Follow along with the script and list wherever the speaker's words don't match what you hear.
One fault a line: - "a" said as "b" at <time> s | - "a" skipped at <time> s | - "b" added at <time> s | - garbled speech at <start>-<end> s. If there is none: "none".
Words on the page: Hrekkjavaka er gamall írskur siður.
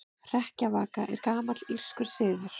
none